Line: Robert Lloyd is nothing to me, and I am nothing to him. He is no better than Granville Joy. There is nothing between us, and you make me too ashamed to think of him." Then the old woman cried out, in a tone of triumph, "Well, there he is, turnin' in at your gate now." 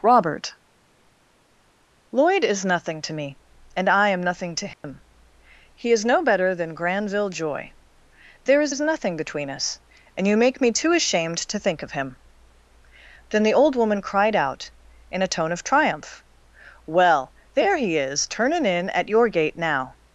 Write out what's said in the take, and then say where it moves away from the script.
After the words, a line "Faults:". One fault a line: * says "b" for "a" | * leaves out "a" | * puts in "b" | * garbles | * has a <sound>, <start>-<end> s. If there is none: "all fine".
Robert Lloyd is nothing to me, and I am nothing to him. He is no better than Granville Joy. There is is nothing between us, and you make me too ashamed to think of him." Then the old woman cried out, in a tone of triumph, "Well, there he is, turnin' in at your gate now."
Faults:
* has a dropout, 4.7-4.8 s
* puts in "is"